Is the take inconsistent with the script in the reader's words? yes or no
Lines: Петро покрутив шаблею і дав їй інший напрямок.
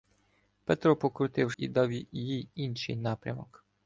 yes